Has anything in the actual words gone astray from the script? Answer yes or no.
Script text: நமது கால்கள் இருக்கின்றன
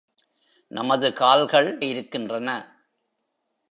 no